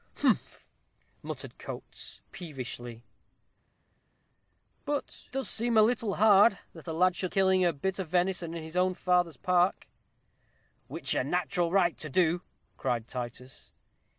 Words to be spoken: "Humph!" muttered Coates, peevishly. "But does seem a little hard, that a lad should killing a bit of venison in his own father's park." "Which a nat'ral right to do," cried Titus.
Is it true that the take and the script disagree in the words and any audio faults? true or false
false